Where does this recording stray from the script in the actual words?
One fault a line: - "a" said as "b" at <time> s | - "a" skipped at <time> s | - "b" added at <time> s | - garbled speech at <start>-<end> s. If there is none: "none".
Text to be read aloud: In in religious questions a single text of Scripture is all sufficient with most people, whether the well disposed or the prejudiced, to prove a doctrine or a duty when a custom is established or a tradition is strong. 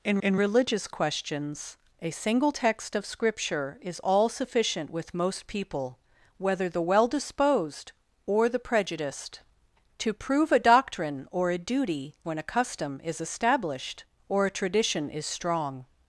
none